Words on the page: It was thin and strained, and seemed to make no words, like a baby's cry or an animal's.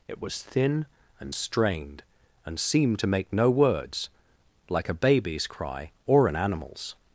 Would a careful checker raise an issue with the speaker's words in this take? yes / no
no